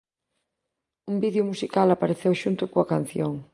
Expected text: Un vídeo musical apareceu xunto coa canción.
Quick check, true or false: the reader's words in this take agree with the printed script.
true